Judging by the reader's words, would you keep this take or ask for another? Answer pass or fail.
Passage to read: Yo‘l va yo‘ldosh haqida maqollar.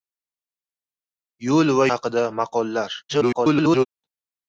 fail